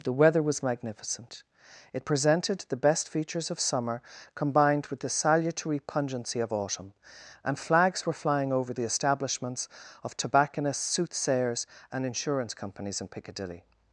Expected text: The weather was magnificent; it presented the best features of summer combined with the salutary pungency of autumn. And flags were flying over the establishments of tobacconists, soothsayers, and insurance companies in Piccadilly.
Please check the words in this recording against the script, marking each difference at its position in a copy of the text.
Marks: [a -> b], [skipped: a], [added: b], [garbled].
The weather was magnificent; it presented the best features of summer combined with the salutary pungency of autumn. And flags were flying over the establishments of tobacconists, soothsayers, and insurance companies in Piccadilly.